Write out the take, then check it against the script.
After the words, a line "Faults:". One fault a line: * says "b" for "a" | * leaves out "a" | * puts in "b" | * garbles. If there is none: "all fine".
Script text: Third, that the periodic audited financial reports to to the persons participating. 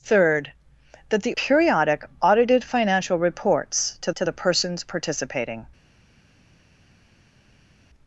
Third, that the periodic audited financial reports to to the persons participating.
Faults:
all fine